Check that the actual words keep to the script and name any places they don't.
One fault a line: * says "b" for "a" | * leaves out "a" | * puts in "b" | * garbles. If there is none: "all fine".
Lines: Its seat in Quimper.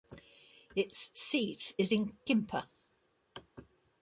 * puts in "is"